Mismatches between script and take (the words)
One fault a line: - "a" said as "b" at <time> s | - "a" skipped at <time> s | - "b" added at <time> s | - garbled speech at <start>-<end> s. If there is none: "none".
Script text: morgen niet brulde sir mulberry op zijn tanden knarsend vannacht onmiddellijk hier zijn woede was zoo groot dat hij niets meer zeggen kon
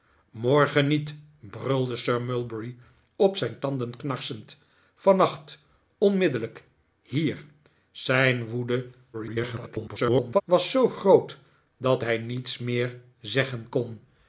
- garbled speech at 9.1-10.4 s